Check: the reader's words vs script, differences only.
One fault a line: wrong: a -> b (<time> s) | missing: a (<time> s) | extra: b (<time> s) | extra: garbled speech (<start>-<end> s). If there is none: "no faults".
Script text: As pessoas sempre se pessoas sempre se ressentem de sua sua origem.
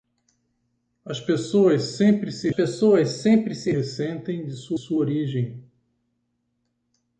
no faults